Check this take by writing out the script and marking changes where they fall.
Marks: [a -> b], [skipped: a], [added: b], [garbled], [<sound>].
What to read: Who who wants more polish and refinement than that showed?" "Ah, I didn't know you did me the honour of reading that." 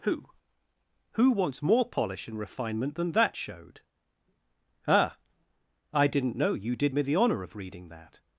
Who who wants more polish and refinement than that showed?" "Ah, I didn't know you did me the honour of reading that."